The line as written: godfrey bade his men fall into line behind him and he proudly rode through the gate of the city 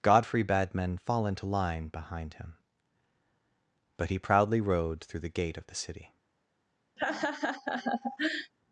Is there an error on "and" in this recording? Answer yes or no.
yes